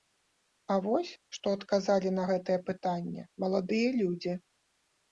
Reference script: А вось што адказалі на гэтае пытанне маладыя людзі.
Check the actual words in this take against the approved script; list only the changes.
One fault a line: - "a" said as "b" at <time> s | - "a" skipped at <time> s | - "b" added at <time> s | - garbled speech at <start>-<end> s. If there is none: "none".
none